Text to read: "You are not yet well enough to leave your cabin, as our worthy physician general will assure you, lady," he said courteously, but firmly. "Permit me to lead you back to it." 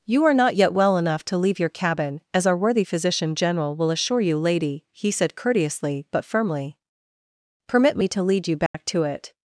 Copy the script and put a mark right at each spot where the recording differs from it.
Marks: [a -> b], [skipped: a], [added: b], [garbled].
"You are not yet well enough to leave your cabin, as our worthy physician general will assure you, lady," he said courteously, but firmly. "Permit me to lead you back to it."